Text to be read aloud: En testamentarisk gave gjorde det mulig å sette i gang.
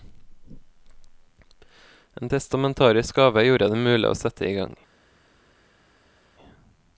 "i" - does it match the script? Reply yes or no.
yes